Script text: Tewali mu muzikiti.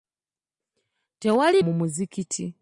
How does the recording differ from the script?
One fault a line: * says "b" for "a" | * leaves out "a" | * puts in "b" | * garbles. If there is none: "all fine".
all fine